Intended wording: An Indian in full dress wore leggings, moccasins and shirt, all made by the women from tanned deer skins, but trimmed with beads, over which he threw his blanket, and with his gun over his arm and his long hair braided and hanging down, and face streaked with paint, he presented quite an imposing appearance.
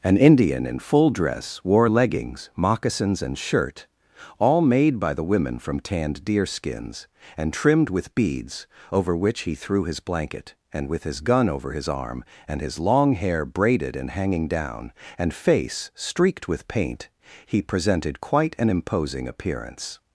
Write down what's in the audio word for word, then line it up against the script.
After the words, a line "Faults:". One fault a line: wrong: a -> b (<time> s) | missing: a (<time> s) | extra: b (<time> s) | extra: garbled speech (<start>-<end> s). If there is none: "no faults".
An Indian in full dress wore leggings, moccasins and shirt, all made by the women from tanned deer skins, and trimmed with beads, over which he threw his blanket, and with his gun over his arm and his long hair braided and hanging down, and face streaked with paint, he presented quite an imposing appearance.
Faults:
wrong: but -> and (7.4 s)